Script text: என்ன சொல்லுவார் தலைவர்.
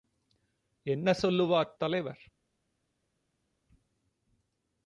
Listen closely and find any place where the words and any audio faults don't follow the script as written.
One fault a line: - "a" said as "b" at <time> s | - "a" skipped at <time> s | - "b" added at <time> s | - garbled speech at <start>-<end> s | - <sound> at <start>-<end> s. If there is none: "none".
none